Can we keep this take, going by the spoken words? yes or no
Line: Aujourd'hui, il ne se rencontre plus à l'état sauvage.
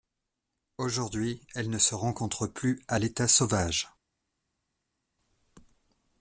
no